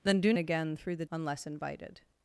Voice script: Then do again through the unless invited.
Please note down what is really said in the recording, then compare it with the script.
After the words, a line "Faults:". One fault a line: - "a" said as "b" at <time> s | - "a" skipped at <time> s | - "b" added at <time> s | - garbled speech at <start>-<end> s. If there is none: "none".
Then do again through the unless invited.
Faults:
none